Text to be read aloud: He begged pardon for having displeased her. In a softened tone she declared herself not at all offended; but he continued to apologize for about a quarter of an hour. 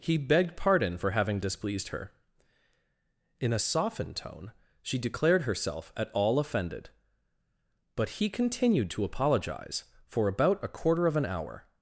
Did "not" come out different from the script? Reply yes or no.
yes